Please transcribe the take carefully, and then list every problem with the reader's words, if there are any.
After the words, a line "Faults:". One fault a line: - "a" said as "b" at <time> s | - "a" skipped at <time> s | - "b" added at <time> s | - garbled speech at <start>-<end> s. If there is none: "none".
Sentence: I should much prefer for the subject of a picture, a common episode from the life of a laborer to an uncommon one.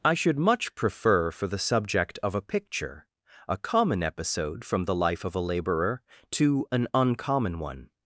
I should much prefer for the subject of a picture, a common episode from the life of a laborer to an uncommon one.
Faults:
none